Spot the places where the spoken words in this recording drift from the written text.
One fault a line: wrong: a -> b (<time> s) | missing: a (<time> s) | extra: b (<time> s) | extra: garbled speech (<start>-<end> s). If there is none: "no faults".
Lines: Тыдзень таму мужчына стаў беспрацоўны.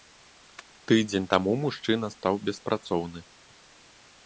no faults